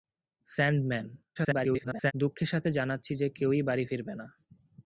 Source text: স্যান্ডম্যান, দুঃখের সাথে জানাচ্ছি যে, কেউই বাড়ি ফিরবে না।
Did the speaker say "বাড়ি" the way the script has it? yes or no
yes